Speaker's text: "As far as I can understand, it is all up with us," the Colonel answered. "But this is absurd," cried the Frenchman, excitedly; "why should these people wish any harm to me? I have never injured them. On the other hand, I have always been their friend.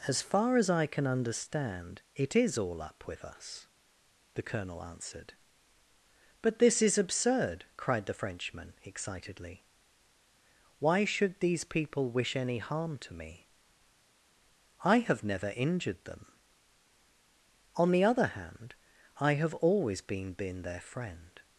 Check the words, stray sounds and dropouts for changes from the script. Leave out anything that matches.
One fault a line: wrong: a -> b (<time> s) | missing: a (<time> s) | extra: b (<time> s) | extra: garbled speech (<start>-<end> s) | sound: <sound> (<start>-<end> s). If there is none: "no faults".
extra: been (20.3 s)